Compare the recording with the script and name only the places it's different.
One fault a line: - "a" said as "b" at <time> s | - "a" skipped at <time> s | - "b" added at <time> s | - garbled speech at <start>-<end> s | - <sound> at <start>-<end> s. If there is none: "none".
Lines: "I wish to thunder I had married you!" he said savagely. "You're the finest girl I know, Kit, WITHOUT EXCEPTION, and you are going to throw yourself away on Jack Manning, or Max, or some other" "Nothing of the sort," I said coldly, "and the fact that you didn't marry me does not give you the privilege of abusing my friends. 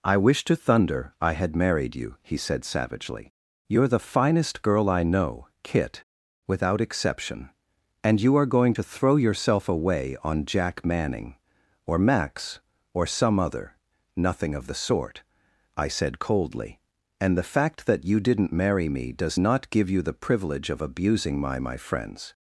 - "my" added at 21.6 s